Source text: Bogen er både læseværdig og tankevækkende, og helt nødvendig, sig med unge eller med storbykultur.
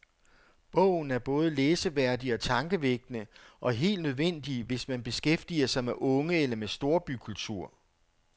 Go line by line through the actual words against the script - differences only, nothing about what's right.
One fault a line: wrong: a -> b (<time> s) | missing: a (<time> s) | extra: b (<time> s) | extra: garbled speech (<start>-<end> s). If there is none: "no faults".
extra: hvis man beskæftiger (4.6 s)